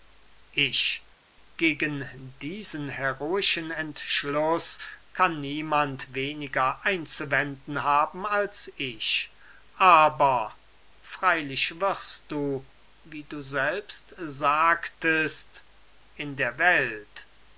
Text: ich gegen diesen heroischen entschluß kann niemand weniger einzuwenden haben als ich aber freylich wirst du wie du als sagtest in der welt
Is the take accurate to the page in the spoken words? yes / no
no